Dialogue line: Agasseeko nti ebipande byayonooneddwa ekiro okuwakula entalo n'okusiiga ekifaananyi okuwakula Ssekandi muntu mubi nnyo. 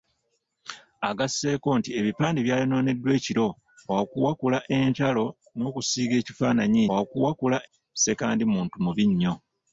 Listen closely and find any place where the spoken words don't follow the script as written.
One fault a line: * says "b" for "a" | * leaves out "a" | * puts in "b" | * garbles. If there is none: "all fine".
all fine